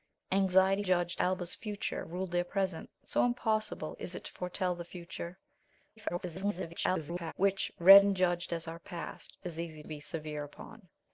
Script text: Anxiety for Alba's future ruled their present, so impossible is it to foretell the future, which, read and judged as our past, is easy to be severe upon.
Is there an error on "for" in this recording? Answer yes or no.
yes